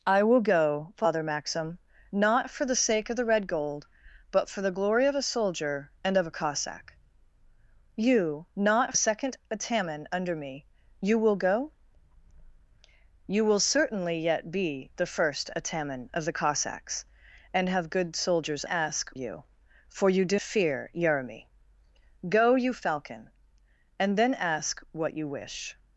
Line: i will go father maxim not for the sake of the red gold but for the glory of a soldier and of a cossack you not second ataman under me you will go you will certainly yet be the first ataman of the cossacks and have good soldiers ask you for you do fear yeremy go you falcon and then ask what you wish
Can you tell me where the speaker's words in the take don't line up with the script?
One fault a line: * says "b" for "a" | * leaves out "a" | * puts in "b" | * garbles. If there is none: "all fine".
all fine